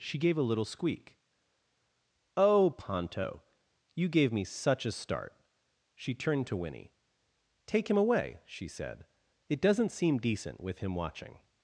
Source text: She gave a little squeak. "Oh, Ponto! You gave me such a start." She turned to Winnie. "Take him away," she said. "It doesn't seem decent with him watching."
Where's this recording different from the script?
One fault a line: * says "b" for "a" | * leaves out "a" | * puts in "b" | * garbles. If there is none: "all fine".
all fine